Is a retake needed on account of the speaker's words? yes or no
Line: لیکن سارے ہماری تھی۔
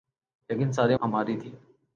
no